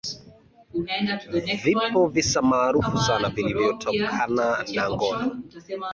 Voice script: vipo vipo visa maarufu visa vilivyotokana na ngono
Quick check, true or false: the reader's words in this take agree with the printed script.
false